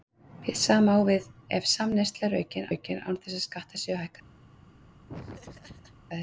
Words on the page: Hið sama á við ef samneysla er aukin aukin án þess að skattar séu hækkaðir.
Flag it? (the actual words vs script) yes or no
no